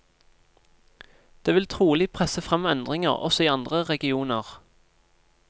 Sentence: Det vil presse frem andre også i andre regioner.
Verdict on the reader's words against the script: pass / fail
fail